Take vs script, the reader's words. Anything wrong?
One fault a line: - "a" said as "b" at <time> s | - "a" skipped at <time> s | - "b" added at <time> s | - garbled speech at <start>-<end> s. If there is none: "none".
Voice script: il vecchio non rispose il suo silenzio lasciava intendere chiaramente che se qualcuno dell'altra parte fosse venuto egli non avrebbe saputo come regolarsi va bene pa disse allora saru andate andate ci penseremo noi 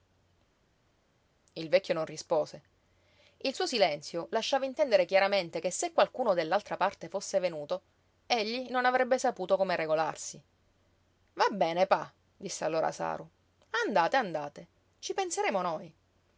none